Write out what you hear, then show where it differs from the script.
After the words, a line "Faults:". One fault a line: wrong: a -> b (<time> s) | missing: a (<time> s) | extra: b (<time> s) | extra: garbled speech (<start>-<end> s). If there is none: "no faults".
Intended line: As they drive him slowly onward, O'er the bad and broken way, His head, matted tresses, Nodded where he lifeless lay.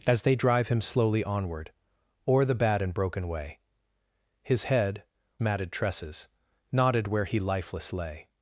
As they drive him slowly onward, O'er the bad and broken way, His head, matted tresses, Nodded where he lifeless lay.
Faults:
no faults